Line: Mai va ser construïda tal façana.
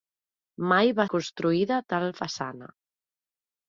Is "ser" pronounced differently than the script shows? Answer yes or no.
yes